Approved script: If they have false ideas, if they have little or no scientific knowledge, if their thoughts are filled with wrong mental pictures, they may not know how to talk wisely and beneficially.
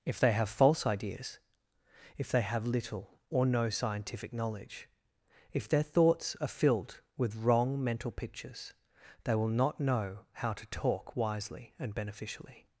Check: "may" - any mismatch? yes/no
yes